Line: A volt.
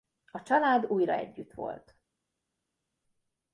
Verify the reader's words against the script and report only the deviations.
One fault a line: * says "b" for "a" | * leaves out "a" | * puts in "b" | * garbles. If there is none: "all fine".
* puts in "család újra együtt"